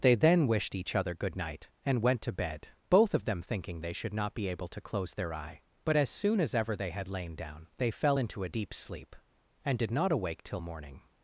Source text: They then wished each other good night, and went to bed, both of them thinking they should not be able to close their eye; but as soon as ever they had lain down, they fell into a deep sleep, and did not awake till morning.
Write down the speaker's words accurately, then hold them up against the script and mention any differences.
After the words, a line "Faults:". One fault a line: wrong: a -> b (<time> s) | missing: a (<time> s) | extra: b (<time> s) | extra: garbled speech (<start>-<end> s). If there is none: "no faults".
They then wished each other good night, and went to bed, both of them thinking they should not be able to close their eye; but as soon as ever they had lain down, they fell into a deep sleep, and did not awake till morning.
Faults:
no faults